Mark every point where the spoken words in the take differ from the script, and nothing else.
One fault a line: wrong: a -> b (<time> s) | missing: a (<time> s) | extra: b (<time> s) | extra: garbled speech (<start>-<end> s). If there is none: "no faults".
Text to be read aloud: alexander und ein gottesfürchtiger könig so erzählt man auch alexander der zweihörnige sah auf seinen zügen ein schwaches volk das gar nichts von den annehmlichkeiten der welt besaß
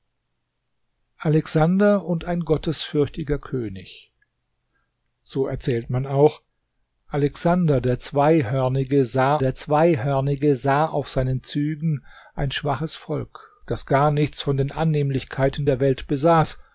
extra: der zweihörnige sah (9.4 s)